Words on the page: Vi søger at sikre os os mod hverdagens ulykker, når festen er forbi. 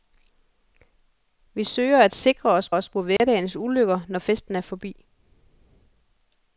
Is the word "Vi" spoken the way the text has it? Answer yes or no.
yes